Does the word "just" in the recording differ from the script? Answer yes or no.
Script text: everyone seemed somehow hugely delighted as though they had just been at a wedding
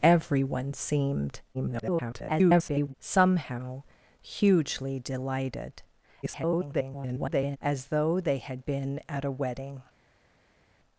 yes